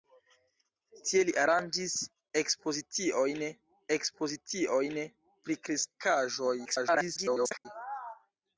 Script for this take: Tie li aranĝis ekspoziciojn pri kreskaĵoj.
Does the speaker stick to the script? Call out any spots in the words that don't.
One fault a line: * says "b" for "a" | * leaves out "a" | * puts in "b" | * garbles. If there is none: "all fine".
* puts in "ekspoziciojn"
* garbles